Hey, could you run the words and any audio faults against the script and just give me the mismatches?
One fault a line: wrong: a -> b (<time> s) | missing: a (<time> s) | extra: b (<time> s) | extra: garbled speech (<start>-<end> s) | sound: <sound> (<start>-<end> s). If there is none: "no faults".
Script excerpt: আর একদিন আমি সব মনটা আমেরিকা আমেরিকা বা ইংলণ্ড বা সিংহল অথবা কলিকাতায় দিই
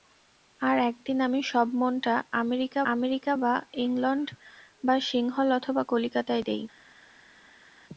no faults